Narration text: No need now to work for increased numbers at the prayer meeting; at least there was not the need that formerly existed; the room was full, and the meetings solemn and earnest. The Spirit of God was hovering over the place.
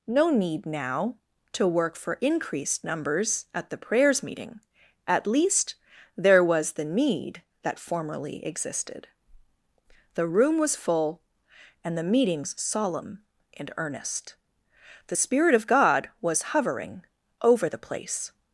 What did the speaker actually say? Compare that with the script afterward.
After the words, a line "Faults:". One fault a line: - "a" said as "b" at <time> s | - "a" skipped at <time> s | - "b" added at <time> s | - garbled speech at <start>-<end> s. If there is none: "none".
No need now to work for increased numbers at the prayers meeting; at least there was the need that formerly existed; the room was full, and the meetings solemn and earnest. The Spirit of God was hovering over the place.
Faults:
- "prayer" said as "prayers" at 3.8 s
- "not" skipped at 6.7 s